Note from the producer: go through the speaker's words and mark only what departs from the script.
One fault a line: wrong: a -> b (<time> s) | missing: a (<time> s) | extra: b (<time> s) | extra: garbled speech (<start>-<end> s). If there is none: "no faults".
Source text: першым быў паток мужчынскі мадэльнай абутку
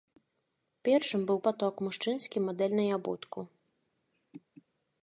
no faults